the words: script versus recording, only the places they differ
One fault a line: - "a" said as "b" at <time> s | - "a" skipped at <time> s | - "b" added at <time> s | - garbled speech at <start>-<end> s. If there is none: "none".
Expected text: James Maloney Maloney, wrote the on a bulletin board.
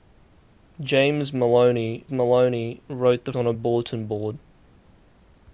none